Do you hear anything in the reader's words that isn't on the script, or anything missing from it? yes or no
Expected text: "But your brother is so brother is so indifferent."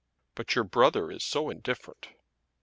yes